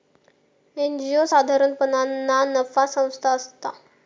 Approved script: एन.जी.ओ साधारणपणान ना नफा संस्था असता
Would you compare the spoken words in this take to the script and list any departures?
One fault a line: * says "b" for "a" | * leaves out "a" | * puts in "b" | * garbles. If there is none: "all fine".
all fine